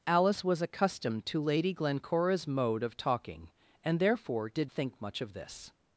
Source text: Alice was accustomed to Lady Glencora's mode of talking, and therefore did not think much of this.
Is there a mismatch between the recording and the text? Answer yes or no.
yes